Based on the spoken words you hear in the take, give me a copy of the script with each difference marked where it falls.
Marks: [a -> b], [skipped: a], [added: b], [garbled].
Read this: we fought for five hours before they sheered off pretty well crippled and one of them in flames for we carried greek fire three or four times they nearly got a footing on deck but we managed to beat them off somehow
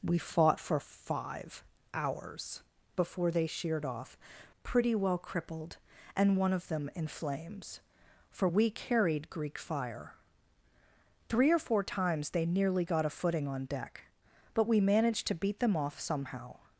we fought for five hours before they sheered off pretty well crippled and one of them in flames for we carried greek fire three or four times they nearly got a footing on deck but we managed to beat them off somehow